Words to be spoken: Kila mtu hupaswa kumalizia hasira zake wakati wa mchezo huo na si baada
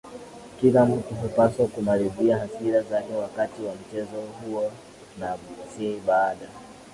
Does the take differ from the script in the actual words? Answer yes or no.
no